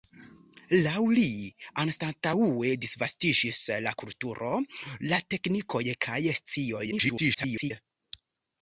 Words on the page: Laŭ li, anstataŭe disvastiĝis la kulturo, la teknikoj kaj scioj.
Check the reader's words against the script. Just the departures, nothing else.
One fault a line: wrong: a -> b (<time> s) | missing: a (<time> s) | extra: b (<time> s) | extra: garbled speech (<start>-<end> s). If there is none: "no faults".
extra: garbled speech (6.9-7.7 s)